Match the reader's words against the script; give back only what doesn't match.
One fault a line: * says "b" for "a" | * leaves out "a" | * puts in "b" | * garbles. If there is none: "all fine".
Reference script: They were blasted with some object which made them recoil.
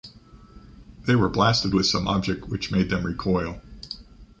all fine